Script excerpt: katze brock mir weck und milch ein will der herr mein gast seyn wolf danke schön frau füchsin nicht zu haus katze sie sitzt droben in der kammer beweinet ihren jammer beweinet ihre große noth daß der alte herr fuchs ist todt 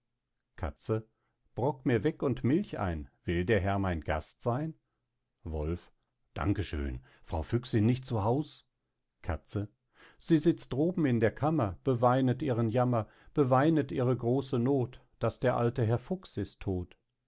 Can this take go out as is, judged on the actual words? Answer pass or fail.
pass